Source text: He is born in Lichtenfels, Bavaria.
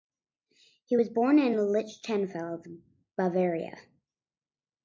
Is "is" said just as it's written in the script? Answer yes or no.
no